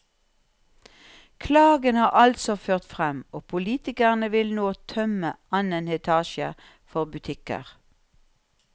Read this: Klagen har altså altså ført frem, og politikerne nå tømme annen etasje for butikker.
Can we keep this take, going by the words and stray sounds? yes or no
no